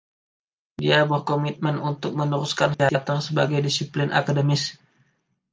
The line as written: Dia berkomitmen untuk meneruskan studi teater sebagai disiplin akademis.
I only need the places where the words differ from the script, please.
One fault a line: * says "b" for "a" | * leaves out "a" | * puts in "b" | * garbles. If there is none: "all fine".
* leaves out "studi"